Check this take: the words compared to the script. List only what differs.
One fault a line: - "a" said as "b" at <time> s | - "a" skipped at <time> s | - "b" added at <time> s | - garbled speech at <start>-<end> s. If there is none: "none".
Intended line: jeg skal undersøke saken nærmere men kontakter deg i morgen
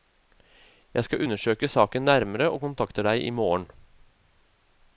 - "men" said as "og" at 2.5 s